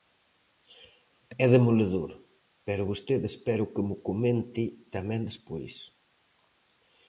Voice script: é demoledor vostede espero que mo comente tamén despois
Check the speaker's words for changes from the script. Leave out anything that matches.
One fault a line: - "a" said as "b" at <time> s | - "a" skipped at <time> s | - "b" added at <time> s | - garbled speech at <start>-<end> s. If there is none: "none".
- "pero" added at 2.6 s